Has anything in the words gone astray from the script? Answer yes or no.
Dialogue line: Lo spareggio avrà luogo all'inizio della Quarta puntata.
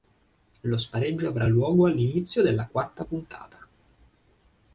no